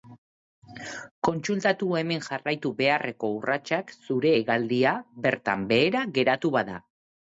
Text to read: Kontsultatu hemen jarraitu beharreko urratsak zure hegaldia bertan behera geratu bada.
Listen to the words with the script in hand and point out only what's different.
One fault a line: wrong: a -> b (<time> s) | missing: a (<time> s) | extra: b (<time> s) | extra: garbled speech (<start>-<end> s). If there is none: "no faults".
no faults